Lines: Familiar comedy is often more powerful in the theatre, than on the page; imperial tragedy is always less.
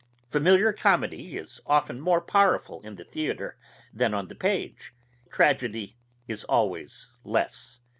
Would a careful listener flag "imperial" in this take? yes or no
yes